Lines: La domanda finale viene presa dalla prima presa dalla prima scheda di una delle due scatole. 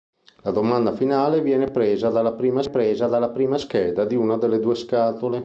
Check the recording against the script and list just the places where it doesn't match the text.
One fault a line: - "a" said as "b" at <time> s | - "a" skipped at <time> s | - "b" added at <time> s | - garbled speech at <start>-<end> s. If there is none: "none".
none